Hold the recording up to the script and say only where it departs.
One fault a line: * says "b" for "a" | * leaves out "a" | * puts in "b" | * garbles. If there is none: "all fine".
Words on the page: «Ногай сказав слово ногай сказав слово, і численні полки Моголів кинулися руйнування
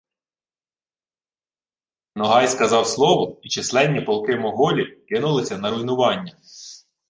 * leaves out "ногай сказав слово"
* puts in "на"